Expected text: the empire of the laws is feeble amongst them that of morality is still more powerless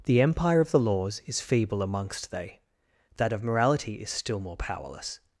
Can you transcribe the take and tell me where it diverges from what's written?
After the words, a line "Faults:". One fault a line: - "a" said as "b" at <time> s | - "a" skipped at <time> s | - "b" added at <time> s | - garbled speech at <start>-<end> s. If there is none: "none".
the empire of the laws is feeble amongst they that of morality is still more powerless
Faults:
- "them" said as "they" at 2.3 s